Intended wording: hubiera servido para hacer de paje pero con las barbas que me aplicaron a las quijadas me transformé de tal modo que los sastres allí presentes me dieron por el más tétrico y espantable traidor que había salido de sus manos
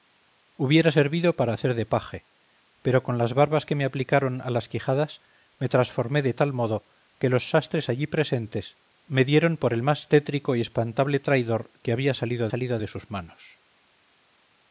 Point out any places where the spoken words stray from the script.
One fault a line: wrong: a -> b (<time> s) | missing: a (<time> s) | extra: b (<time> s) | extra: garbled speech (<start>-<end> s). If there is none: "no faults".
extra: salido (12.5 s)